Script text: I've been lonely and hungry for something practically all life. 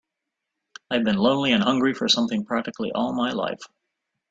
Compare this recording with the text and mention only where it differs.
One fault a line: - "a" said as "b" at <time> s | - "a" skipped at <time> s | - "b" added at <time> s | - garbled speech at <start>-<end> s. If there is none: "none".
- "my" added at 3.1 s